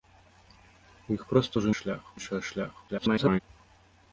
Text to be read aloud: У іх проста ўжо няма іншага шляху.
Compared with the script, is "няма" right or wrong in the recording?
wrong